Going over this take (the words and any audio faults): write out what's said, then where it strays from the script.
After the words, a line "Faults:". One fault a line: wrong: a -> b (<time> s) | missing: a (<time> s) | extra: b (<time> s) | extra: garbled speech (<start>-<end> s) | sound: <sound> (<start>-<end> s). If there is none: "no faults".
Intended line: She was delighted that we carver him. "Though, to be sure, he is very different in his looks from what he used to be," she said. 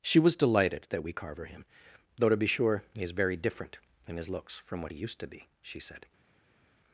She was delighted that we carver him. "Though, to be sure, he is very different in his looks from what he used to be," she said.
Faults:
no faults